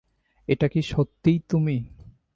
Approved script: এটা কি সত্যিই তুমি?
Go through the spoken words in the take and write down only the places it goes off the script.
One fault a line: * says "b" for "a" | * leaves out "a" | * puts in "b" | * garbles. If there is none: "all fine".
all fine